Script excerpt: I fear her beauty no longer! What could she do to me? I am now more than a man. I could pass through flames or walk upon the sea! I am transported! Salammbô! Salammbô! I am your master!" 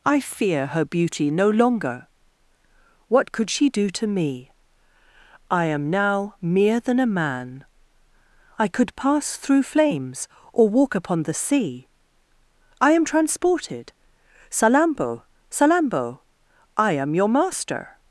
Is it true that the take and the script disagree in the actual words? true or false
true